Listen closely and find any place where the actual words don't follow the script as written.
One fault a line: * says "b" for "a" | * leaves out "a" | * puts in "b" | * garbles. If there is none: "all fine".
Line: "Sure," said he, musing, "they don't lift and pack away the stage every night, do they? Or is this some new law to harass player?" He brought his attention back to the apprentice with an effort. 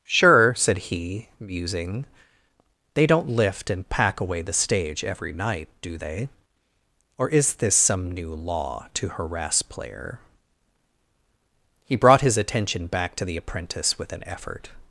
all fine